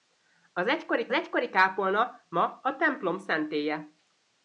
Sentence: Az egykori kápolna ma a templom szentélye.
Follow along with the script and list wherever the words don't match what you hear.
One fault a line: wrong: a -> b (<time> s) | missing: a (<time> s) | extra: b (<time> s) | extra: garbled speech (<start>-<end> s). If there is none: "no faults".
extra: egykori (1.1 s)